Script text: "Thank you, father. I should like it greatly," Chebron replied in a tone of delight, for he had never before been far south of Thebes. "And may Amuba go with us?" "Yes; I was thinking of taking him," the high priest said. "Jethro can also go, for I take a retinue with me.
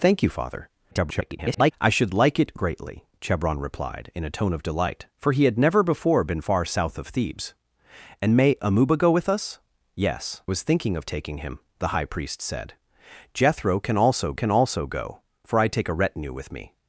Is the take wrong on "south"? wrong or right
right